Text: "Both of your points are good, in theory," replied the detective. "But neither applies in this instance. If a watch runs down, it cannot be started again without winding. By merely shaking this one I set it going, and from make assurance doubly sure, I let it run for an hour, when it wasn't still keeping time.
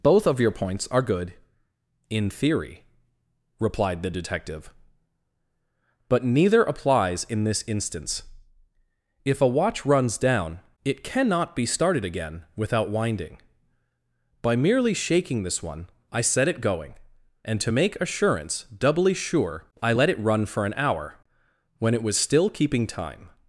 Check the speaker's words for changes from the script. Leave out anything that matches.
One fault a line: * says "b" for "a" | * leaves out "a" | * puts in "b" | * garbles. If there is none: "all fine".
* says "to" for "from"
* says "was" for "wasn't"